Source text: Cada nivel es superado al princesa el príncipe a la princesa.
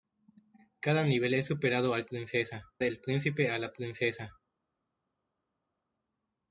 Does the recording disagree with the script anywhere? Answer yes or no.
no